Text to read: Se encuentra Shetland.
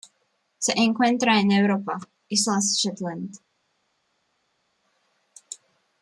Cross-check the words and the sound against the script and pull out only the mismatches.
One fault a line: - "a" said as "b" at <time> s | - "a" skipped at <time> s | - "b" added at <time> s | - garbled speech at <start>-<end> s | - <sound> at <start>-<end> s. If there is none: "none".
- "en Europa Islas" added at 1.4 s